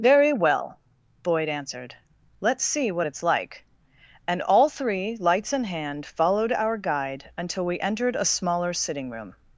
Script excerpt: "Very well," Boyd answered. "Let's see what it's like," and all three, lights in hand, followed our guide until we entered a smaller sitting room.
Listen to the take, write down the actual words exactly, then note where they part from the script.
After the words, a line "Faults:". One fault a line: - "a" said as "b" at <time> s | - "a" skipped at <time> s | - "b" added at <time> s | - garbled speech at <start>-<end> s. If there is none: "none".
"Very well," Boyd answered. "Let's see what it's like," and all three, lights in hand, followed our guide until we entered a smaller sitting room.
Faults:
none